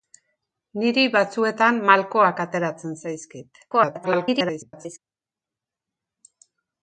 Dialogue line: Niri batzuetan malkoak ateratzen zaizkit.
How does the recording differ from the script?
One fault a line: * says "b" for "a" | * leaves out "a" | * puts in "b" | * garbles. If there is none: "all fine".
* garbles